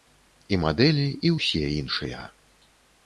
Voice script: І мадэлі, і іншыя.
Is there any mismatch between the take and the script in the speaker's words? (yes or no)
yes